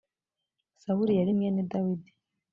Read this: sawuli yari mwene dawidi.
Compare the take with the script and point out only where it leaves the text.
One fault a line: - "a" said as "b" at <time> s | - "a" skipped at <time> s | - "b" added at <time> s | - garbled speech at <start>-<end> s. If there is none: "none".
none